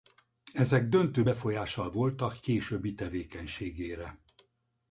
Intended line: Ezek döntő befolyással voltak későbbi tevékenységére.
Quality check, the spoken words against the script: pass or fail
pass